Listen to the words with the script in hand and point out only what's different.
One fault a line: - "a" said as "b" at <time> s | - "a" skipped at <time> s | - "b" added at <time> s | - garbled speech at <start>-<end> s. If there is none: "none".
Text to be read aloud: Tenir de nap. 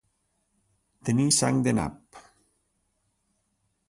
- "sang" added at 1.4 s